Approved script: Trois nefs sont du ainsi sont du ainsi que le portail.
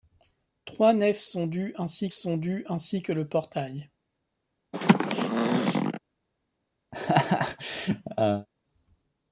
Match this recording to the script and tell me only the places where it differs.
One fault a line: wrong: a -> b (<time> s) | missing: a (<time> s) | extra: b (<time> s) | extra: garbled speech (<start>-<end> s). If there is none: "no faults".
no faults